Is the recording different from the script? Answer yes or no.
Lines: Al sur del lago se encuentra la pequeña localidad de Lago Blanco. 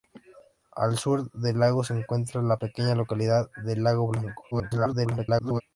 yes